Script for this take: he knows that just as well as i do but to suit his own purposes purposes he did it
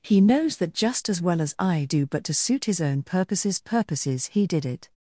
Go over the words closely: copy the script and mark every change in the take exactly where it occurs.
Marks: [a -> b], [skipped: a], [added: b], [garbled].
he knows that just as well as i do but to suit his own purposes purposes he did it